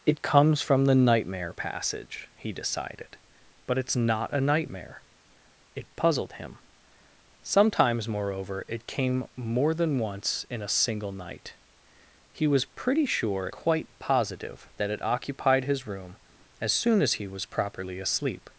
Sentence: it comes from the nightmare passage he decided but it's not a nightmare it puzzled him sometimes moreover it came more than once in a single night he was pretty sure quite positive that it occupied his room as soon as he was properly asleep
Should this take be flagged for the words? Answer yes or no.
no